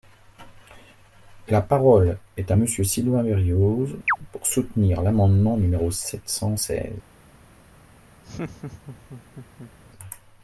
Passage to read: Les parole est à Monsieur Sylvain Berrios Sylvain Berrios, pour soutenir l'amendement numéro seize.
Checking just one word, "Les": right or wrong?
wrong